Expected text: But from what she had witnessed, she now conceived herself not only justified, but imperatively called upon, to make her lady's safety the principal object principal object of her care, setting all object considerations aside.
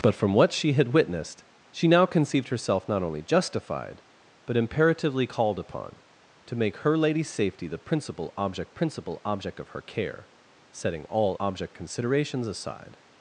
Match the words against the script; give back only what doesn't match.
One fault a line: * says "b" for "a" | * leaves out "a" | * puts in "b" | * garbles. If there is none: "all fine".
all fine